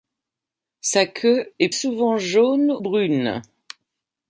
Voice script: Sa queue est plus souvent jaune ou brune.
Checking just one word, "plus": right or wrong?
wrong